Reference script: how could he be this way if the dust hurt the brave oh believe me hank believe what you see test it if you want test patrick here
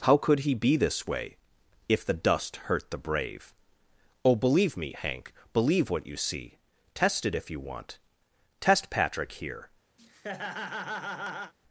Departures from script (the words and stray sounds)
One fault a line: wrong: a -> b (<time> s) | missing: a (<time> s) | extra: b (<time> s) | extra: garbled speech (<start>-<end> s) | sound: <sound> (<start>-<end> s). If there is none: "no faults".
sound: laugh (10.0-11.5 s)